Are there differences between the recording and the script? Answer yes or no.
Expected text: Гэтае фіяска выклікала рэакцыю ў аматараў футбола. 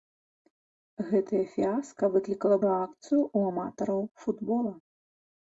no